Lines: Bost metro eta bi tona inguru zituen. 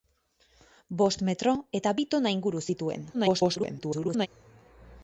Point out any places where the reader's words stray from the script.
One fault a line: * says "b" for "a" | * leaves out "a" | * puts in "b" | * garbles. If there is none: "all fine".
* garbles